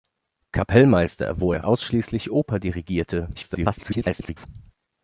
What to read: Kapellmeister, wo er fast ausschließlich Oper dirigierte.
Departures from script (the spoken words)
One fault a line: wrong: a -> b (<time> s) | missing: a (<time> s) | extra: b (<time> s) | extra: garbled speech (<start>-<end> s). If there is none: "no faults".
missing: fast (1.6 s)
extra: garbled speech (3.3-4.5 s)